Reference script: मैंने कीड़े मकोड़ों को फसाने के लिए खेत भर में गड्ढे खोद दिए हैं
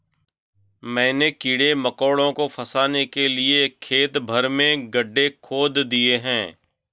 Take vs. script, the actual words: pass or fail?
pass